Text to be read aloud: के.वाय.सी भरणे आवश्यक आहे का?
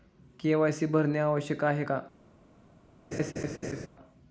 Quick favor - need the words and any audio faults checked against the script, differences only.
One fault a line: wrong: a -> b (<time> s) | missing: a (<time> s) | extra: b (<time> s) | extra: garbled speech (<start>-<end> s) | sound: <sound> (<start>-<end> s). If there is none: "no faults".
sound: laugh (3.1-3.9 s)